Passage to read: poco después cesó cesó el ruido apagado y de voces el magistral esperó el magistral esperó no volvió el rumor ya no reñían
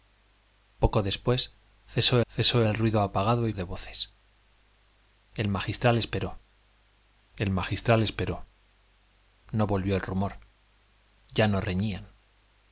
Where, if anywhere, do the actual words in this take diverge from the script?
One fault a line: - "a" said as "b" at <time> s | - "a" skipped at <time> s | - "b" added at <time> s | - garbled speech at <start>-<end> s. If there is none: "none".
none